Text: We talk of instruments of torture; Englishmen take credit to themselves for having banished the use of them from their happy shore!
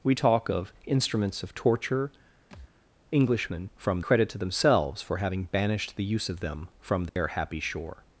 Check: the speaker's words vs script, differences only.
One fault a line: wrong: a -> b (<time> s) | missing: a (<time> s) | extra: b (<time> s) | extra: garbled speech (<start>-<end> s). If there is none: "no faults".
wrong: take -> from (3.8 s)